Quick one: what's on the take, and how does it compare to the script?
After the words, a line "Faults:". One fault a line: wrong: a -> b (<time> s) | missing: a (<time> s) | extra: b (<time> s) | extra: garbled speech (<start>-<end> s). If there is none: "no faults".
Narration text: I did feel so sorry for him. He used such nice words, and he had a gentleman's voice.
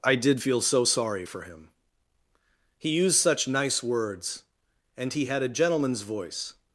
I did feel so sorry for him. He used such nice words, and he had a gentleman's voice.
Faults:
no faults